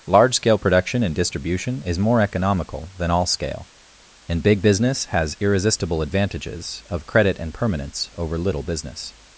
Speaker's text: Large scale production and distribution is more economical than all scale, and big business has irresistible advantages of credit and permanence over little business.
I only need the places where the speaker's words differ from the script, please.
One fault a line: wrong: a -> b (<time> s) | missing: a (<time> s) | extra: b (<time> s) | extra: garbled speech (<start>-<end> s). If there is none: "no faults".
no faults